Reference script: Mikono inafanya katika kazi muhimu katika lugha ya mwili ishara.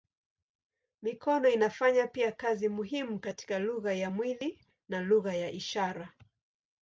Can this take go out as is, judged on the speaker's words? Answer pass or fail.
fail